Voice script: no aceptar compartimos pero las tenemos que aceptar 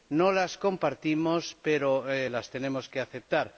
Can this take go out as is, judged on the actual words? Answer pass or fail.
fail